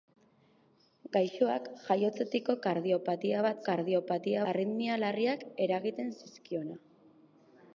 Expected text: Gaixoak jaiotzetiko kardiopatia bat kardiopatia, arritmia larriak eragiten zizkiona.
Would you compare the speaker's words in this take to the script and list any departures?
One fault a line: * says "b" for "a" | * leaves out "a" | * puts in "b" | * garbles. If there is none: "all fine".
all fine